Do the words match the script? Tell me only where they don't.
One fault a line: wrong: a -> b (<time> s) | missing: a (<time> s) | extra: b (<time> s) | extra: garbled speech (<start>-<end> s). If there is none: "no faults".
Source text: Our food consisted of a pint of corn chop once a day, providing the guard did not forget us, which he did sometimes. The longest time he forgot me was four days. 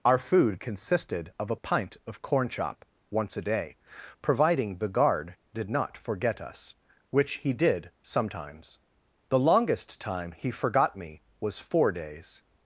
no faults